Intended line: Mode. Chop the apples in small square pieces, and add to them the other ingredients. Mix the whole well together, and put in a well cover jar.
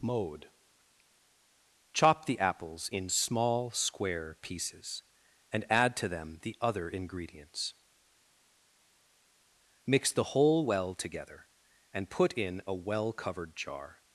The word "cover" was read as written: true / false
false